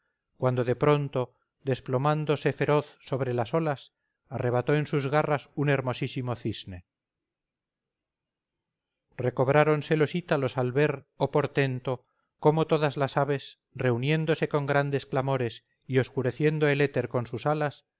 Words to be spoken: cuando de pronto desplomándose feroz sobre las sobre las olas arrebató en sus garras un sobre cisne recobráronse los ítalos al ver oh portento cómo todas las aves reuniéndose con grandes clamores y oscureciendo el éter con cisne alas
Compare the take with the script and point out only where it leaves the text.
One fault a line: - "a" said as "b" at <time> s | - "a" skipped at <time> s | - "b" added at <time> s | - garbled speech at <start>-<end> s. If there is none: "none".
- "sobre las" skipped at 3.5 s
- "sobre" said as "hermosísimo" at 5.7 s
- "cisne" said as "sus" at 17.3 s